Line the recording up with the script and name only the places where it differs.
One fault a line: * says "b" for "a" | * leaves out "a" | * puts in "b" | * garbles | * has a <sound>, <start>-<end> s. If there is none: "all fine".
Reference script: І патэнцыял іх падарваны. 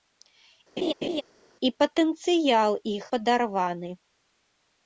* has a laugh, 0.8-1.2 s